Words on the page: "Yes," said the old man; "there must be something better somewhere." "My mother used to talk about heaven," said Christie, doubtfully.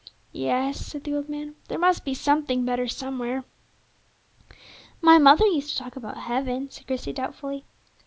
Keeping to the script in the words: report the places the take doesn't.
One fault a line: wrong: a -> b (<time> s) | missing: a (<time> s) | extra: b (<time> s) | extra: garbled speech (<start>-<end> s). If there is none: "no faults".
no faults